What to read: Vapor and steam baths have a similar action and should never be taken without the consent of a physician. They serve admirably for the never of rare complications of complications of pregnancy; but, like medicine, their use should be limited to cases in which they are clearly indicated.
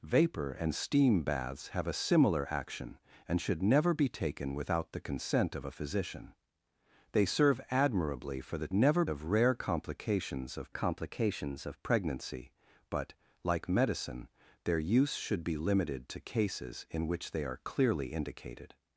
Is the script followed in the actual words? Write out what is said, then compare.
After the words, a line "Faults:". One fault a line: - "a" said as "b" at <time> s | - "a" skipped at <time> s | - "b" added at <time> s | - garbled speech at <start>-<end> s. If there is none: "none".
Vapor and steam baths have a similar action and should never be taken without the consent of a physician. They serve admirably for the never of rare complications of complications of pregnancy; but, like medicine, their use should be limited to cases in which they are clearly indicated.
Faults:
none